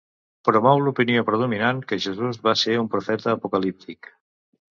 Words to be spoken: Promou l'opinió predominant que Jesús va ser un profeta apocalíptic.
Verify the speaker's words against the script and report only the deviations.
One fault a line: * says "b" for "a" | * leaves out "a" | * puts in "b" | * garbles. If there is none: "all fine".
all fine